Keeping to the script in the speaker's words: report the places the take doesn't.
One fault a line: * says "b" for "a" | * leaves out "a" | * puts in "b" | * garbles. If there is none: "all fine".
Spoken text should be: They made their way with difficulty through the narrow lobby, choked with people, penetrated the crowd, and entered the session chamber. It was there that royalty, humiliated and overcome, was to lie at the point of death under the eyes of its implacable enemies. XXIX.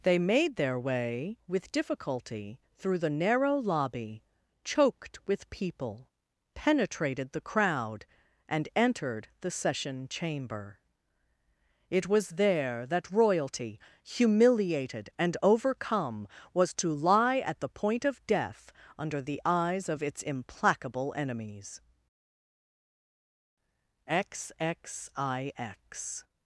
all fine